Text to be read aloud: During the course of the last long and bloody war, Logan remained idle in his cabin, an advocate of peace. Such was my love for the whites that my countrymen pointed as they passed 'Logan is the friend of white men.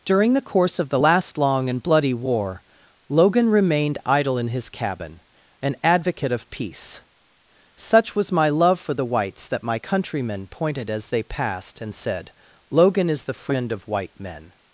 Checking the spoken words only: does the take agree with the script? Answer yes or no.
no